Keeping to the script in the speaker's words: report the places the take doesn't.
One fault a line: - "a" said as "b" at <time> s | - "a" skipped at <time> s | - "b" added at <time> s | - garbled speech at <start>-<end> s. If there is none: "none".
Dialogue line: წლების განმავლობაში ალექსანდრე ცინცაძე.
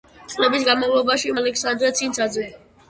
none